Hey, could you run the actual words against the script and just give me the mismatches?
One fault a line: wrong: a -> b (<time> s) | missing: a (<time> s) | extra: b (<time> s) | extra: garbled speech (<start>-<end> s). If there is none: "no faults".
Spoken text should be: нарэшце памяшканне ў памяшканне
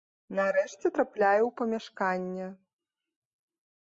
wrong: памяшканне -> трапляю (1.0 s)